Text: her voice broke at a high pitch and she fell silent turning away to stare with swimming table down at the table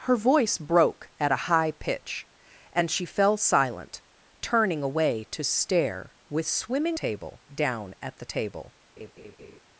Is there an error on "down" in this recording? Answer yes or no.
no